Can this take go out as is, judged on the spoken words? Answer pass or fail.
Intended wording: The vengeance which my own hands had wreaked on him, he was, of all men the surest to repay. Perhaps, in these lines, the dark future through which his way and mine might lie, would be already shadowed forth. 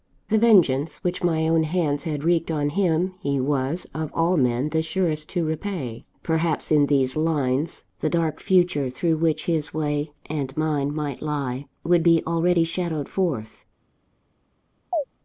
pass